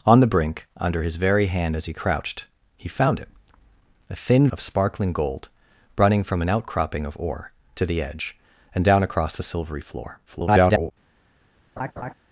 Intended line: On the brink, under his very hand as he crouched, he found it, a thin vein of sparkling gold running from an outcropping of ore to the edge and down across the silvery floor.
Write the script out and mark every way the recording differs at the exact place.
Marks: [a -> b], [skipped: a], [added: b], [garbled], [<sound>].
On the brink, under his very hand as he crouched, he found it, a thin [skipped: vein] of sparkling gold running from an outcropping of ore to the edge and down across the silvery floor. [garbled] [laugh]